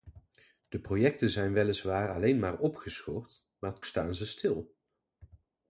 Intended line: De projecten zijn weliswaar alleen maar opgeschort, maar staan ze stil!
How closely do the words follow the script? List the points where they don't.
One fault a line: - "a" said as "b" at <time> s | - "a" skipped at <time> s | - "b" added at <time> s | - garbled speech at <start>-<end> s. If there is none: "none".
none